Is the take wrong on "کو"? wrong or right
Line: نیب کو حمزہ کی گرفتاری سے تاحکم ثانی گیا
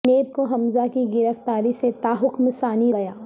right